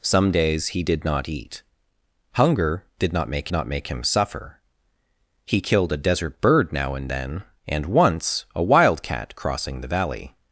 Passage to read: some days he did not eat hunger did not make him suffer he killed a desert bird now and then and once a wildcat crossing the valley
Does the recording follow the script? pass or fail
fail